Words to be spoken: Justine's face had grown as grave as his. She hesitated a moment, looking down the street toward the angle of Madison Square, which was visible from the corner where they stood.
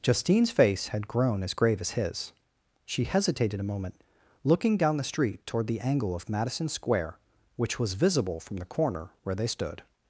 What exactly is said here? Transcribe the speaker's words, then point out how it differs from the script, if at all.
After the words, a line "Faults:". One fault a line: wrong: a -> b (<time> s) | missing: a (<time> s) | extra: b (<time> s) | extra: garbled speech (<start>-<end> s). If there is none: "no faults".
Justine's face had grown as grave as his. She hesitated a moment, looking down the street toward the angle of Madison Square, which was visible from the corner where they stood.
Faults:
no faults